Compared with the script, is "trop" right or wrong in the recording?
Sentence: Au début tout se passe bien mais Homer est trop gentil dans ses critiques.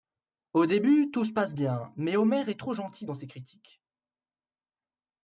right